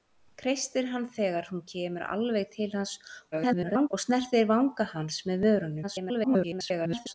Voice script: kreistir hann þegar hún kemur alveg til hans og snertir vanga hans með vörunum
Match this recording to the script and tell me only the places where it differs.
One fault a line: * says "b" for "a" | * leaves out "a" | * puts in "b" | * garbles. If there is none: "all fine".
* garbles
* garbles